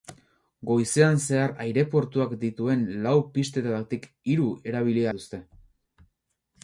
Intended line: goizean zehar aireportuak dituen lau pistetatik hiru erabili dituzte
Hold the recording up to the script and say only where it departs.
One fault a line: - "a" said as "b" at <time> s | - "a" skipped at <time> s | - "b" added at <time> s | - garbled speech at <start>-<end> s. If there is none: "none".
none